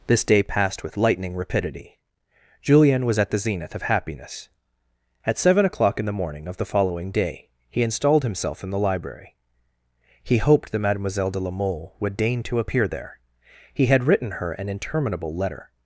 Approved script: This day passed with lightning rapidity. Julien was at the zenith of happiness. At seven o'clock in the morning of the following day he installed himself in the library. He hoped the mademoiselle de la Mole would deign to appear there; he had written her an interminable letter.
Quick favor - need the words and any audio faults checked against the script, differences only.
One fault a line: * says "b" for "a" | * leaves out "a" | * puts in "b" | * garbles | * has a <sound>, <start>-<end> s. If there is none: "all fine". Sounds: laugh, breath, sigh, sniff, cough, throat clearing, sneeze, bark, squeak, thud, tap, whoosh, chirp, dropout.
* says "that" for "the"